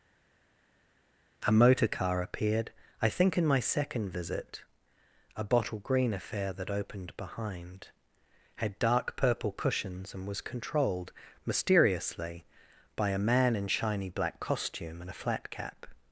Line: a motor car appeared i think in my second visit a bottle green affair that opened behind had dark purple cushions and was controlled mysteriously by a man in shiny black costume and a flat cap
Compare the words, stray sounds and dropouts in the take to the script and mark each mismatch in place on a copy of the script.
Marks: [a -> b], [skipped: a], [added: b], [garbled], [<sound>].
a motor car appeared i think in my second visit a bottle green affair that opened behind had dark purple cushions and was controlled mysteriously by a man in shiny black costume and a flat cap